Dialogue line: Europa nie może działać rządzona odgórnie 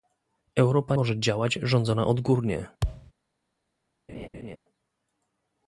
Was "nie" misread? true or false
true